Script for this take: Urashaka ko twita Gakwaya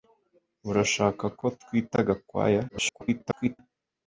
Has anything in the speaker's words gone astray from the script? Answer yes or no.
yes